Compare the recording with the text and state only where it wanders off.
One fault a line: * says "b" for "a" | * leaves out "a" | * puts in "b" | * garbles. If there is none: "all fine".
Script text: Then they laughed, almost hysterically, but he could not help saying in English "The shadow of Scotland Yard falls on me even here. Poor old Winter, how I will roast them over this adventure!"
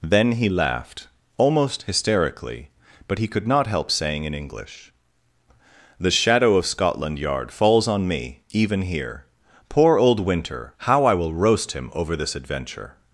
* says "he" for "they"
* says "him" for "them"